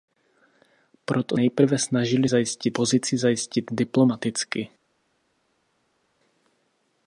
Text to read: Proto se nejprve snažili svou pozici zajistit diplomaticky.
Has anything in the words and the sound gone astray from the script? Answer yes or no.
yes